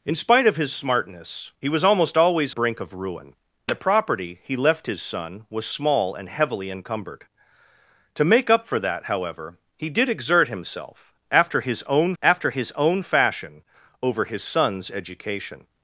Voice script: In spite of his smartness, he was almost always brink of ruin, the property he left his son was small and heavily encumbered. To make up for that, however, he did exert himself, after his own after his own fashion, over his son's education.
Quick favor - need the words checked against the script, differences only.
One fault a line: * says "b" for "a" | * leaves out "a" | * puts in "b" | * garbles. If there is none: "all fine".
all fine